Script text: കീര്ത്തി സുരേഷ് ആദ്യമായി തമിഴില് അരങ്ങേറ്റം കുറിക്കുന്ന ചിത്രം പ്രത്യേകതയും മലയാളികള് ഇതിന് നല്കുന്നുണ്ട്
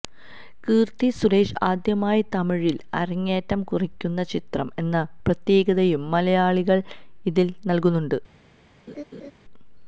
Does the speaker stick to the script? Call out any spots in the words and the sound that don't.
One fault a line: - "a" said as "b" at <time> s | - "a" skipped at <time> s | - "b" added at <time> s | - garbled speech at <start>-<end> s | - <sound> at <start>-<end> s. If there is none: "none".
- "എന്ന" added at 4.8 s
- laugh at 8.9-9.3 s